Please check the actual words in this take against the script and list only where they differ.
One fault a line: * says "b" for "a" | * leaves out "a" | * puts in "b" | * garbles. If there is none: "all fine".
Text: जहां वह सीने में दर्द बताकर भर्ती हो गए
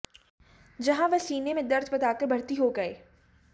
all fine